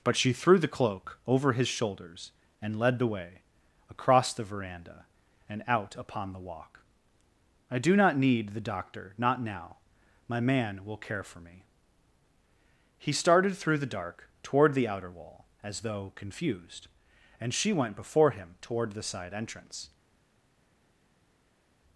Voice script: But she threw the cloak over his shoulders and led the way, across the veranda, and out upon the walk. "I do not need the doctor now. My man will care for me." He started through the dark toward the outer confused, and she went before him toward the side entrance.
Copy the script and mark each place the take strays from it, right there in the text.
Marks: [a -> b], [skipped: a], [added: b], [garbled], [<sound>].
But she threw the cloak over his shoulders and led the way, across the veranda, and out upon the walk. "I do not need the doctor [added: not] now. My man will care for me." He started through the dark toward the outer [added: wall as though] confused, and she went before him toward the side entrance.